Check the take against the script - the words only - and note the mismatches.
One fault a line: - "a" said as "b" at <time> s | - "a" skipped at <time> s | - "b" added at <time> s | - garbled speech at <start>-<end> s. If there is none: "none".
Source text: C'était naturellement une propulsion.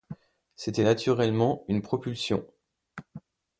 none